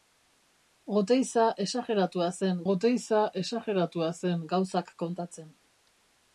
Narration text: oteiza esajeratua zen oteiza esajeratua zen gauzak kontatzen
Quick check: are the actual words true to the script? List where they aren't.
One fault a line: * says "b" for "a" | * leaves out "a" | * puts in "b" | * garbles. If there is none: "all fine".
all fine